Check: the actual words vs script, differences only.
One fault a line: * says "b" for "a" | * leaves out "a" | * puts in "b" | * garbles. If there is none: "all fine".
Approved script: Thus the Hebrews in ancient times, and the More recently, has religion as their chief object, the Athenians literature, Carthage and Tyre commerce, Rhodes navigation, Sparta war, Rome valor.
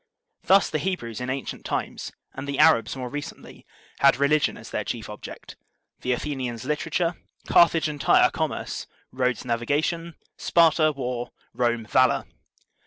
* puts in "Arabs"
* says "had" for "has"